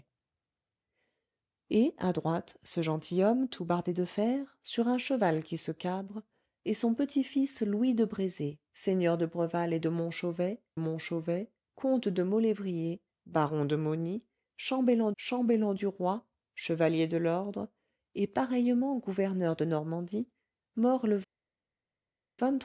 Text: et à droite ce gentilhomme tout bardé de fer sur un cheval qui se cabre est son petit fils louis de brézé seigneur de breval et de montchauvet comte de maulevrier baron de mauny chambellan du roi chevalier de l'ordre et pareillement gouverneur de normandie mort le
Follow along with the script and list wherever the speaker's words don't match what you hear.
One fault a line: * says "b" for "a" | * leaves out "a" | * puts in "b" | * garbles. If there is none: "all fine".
* puts in "montchauvet"
* puts in "chambellan"